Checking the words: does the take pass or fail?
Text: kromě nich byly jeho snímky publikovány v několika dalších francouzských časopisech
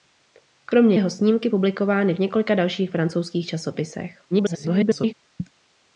fail